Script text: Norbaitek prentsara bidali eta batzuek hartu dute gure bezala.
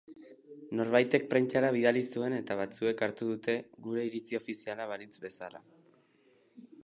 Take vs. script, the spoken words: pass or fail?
fail